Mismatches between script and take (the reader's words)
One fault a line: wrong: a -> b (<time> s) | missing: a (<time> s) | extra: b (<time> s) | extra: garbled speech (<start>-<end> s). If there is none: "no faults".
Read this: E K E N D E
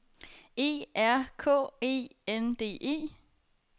extra: R (0.9 s)